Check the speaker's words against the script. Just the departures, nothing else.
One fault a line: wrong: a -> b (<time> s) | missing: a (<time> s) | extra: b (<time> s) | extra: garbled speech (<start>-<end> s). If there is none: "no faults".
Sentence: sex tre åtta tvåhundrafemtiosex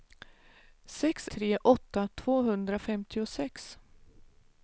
no faults